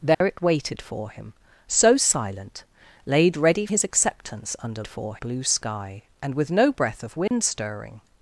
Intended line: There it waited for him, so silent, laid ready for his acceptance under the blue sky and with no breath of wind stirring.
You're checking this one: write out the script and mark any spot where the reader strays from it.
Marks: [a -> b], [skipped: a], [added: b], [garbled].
There it waited for him, so silent, laid ready [skipped: for] his acceptance under [the -> for] blue sky and with no breath of wind stirring.